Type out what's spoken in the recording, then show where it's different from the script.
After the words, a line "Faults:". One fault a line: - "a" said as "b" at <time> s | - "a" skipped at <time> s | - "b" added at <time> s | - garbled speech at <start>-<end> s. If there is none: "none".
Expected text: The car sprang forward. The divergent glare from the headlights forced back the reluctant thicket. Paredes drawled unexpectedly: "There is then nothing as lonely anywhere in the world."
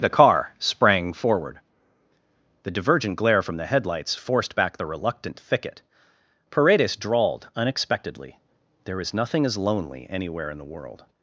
The car sprang forward. The divergent glare from the headlights forced back the reluctant thicket. Paredes drawled unexpectedly: "There is nothing as lonely anywhere in the world."
Faults:
- "then" skipped at 9.1 s